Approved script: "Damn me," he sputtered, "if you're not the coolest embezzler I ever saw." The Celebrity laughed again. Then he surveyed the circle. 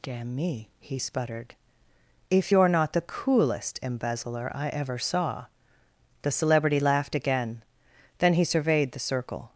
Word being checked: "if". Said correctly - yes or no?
yes